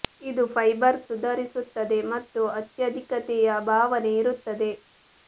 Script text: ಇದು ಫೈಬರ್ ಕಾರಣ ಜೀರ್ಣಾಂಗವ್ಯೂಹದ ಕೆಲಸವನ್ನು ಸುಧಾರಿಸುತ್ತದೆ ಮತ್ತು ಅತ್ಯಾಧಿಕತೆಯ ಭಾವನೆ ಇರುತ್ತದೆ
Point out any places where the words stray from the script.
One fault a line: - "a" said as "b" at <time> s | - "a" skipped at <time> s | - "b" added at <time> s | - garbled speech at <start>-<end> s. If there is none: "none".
- "ಕಾರಣ ಜೀರ್ಣಾಂಗವ್ಯೂಹದ ಕೆಲಸವನ್ನು" skipped at 1.0 s